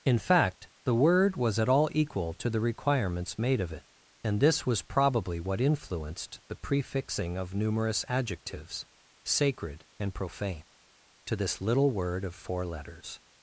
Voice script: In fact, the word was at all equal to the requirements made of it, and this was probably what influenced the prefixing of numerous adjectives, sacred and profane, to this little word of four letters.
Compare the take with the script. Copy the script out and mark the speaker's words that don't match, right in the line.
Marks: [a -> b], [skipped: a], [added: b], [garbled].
In fact, the word was at all equal to the requirements made of it, and this was probably what influenced the prefixing of numerous adjectives, sacred and profane, to this little word of four letters.